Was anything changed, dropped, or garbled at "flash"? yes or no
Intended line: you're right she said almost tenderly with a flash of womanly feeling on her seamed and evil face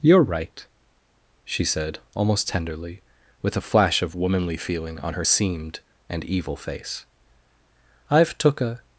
no